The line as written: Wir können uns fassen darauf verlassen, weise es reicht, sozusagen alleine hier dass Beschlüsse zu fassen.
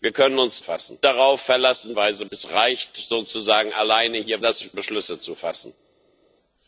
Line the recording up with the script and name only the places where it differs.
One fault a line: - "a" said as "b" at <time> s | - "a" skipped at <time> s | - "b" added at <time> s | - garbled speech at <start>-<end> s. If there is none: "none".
none